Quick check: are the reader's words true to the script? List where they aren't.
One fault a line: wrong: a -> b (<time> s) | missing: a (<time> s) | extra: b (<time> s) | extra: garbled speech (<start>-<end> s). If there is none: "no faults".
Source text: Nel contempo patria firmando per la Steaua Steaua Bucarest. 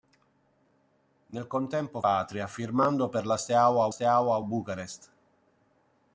no faults